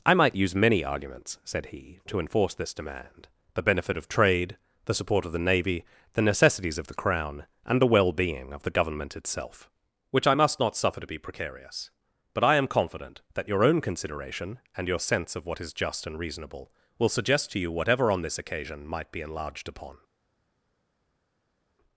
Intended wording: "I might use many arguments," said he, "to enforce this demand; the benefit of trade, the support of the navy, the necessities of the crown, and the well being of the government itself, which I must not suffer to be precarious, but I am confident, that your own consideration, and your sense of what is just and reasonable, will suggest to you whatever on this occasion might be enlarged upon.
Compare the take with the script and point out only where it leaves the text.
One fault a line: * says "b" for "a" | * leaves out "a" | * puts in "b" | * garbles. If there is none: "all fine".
all fine